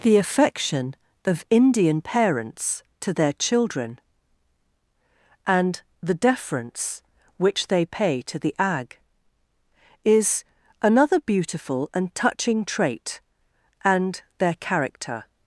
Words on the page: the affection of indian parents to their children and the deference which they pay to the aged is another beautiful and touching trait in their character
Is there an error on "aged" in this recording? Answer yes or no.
yes